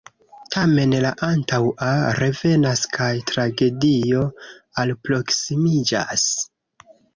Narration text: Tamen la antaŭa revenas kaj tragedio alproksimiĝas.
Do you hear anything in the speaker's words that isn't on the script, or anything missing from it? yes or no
no